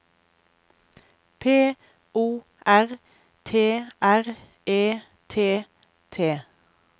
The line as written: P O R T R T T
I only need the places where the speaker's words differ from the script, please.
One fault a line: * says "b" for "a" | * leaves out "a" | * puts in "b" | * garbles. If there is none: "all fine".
* puts in "E"